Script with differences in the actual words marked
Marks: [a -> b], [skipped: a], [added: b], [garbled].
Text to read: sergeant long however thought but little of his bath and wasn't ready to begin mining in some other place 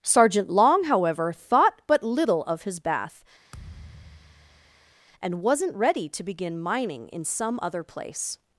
sergeant long however thought but little of his bath and wasn't ready to begin mining in some other place